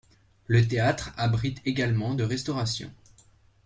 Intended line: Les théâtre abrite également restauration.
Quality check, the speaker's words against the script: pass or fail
fail